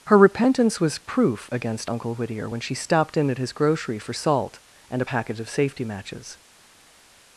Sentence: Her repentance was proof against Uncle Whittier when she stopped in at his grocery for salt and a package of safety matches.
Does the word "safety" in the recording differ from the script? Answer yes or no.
no